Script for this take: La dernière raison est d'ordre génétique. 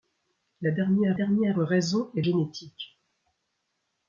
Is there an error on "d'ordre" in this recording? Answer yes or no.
yes